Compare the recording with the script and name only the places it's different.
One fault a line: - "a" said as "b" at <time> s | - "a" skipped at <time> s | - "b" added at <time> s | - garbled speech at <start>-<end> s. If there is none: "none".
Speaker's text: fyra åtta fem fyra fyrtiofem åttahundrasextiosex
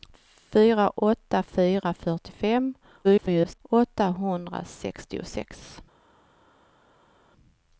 - "fem" skipped at 1.4 s
- garbled speech at 3.0-3.6 s